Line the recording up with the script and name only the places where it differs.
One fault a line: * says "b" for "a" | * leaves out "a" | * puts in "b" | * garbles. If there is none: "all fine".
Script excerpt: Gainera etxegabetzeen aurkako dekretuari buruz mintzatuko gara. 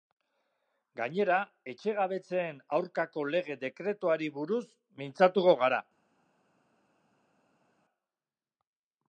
* puts in "lege"